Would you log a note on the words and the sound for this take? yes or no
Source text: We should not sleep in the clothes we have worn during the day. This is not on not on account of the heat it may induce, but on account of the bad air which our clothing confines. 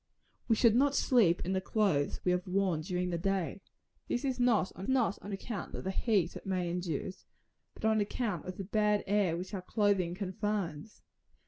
no